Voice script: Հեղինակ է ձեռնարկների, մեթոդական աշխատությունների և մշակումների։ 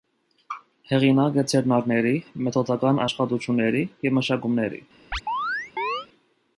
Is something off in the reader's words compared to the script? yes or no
no